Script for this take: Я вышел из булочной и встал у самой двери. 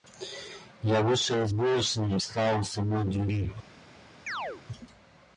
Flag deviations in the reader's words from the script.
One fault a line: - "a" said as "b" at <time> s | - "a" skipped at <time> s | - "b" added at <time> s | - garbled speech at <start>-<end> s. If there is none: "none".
none